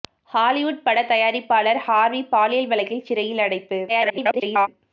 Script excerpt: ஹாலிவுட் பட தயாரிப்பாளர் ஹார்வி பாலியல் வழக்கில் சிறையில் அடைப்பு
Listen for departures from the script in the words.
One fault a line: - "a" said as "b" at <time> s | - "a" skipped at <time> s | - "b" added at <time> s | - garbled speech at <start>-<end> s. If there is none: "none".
- garbled speech at 3.9-4.7 s